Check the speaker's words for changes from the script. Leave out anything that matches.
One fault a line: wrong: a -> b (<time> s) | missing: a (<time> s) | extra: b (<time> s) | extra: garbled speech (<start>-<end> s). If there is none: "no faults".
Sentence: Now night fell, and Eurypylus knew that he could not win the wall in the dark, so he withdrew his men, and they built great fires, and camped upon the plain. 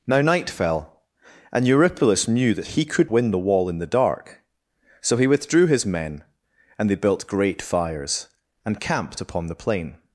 missing: not (3.1 s)